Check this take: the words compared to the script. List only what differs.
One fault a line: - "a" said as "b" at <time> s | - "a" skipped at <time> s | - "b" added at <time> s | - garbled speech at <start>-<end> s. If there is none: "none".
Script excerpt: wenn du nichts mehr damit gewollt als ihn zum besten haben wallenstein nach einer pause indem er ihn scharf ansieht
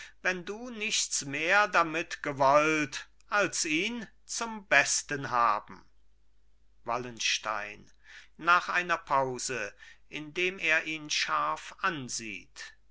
none